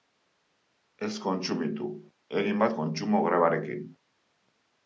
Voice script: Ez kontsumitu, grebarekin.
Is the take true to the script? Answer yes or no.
no